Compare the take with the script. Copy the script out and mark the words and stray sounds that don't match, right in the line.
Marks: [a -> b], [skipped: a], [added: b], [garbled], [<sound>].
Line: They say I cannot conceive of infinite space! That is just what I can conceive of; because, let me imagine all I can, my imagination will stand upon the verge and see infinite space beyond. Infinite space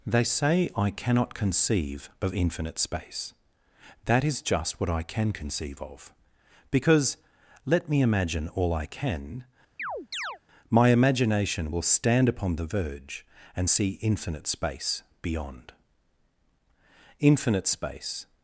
They say I cannot conceive of infinite space! That is just what I can conceive of; because, let me imagine all I can, [chirp] my imagination will stand upon the verge and see infinite space beyond. Infinite space